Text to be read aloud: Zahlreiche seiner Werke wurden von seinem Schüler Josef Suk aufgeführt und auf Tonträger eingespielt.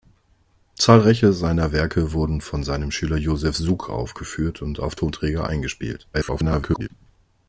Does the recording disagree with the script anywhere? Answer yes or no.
yes